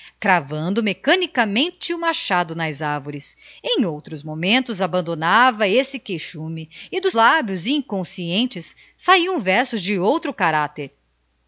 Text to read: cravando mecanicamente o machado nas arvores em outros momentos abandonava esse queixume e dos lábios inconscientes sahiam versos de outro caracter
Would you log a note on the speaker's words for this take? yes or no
no